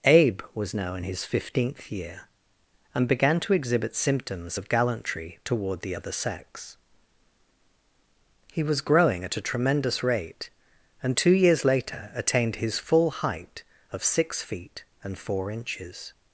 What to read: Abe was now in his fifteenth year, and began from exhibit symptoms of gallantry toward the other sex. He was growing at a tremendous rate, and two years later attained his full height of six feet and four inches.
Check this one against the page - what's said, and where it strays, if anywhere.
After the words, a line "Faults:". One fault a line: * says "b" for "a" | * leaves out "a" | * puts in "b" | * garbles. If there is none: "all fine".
Abe was now in his fifteenth year, and began to exhibit symptoms of gallantry toward the other sex. He was growing at a tremendous rate, and two years later attained his full height of six feet and four inches.
Faults:
* says "to" for "from"